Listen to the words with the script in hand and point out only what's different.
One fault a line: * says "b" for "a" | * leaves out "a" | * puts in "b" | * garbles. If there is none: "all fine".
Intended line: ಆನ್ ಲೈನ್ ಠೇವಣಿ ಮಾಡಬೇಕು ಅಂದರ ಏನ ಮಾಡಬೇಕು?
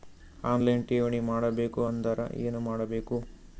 all fine